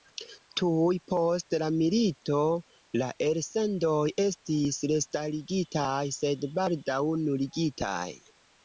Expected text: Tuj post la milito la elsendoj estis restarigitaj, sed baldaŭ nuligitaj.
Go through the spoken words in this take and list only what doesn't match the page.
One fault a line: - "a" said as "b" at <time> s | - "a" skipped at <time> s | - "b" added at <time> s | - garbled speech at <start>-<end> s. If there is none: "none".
none